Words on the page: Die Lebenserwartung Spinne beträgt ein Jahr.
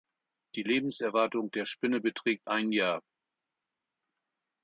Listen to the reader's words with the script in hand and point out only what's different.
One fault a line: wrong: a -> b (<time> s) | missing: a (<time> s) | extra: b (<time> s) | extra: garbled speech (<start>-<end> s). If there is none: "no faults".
extra: der (1.5 s)